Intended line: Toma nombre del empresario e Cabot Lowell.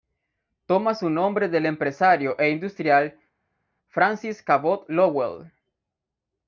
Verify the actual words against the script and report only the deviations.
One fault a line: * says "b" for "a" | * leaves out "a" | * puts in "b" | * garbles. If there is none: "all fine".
* puts in "su"
* puts in "industrial Francis"